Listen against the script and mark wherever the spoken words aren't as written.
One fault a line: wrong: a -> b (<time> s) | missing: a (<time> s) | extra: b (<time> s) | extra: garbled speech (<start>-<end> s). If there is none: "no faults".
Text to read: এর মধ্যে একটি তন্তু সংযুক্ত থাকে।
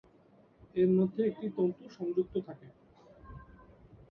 no faults